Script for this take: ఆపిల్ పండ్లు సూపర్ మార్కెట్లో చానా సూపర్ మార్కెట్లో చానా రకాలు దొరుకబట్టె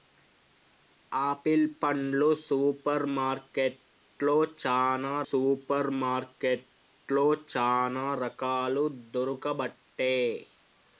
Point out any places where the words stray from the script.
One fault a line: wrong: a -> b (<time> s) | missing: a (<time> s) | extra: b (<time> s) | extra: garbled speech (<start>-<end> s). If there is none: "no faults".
no faults